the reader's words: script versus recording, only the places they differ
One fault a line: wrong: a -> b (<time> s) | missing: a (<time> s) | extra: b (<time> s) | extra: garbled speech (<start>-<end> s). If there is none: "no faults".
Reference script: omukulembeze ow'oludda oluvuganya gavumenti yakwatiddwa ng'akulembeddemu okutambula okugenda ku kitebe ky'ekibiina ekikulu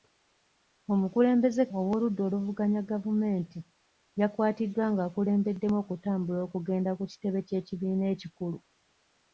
no faults